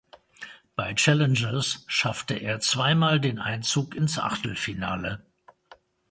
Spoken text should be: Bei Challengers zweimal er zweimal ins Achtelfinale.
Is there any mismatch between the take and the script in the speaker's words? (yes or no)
yes